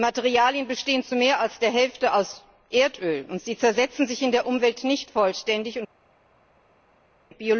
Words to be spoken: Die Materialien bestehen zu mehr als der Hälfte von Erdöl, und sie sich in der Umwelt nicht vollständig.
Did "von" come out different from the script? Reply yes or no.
yes